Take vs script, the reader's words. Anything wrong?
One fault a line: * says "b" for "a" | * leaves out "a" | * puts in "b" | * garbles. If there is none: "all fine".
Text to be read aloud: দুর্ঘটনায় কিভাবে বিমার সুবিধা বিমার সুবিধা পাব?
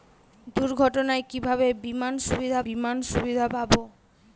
all fine